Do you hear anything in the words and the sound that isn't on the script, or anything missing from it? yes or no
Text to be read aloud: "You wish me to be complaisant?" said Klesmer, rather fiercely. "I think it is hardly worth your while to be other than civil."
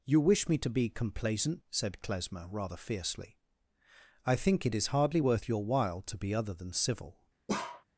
yes